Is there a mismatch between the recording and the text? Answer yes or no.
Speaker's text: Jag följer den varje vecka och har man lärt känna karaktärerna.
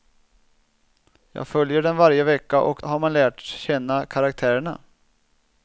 no